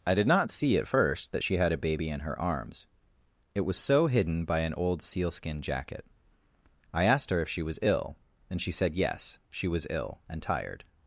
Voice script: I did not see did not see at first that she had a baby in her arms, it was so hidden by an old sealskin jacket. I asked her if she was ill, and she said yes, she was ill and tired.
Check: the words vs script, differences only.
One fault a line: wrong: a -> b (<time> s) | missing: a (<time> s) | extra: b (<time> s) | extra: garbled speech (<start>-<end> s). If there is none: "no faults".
missing: did not see (0.8 s)